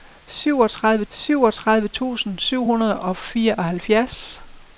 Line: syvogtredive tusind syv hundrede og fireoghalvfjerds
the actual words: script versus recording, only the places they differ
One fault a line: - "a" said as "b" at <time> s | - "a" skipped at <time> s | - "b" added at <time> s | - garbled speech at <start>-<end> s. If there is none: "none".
- "syvogtredive" added at 1.1 s